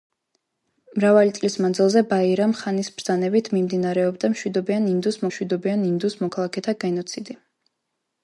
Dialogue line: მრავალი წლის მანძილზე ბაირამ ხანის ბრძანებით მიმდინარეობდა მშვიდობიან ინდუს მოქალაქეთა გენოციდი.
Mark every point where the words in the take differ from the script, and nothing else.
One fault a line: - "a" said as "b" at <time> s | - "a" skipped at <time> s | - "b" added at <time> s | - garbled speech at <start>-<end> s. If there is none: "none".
- "მშვიდობიან ინდუს" added at 5.3 s